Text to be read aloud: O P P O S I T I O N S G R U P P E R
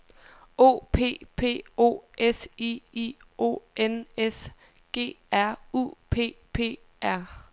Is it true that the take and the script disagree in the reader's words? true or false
true